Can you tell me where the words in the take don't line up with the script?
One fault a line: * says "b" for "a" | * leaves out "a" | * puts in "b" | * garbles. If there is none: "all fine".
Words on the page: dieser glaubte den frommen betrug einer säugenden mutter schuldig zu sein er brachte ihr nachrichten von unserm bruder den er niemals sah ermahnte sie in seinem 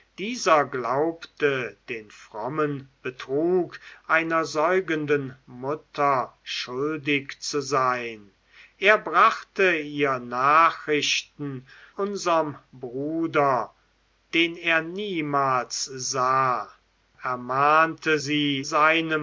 * leaves out "von"
* leaves out "in"